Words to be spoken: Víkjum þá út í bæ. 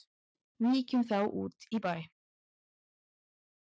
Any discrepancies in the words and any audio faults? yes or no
no